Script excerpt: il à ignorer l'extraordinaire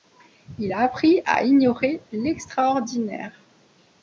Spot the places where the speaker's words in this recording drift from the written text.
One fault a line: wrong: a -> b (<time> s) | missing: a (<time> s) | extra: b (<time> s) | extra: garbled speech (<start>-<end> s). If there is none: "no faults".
extra: a appris (0.7 s)